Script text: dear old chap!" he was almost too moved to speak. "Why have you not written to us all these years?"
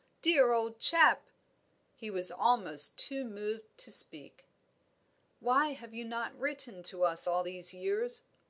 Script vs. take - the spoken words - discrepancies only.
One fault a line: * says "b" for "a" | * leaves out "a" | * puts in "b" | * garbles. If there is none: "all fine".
all fine